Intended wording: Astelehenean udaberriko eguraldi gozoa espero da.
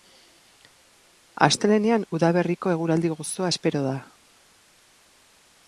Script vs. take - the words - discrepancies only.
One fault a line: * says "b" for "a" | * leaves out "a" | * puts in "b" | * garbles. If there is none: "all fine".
all fine